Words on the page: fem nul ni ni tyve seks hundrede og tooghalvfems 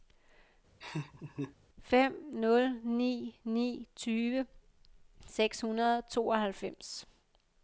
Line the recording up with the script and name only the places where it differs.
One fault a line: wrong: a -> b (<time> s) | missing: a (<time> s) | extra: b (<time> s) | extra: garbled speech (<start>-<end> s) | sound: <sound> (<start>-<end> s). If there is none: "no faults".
sound: laugh (0.8-1.6 s)